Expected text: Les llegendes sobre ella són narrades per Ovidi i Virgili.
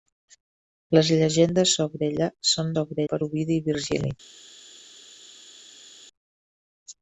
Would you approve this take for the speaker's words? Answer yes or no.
no